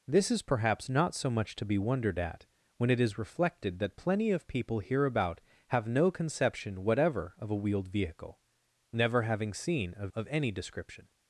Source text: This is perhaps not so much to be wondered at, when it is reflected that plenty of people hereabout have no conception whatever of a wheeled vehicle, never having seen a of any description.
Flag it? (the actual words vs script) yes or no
no